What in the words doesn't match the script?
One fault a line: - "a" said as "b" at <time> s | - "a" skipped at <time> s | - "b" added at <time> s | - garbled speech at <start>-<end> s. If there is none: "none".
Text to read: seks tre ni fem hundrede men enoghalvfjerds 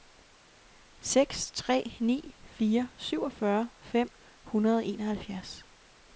- "fire syvogfyrre" added at 2.4 s
- "men" said as "og" at 4.8 s